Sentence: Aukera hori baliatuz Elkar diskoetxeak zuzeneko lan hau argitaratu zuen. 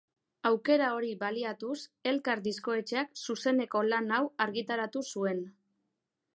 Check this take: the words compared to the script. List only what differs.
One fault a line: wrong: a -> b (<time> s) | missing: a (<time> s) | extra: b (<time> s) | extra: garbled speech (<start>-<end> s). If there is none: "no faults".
no faults